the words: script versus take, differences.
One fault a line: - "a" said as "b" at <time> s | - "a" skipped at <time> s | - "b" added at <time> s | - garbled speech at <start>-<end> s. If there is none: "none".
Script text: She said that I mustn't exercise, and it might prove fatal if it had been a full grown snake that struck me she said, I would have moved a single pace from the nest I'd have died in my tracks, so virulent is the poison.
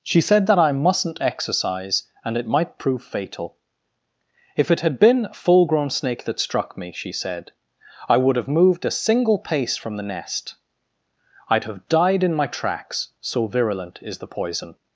none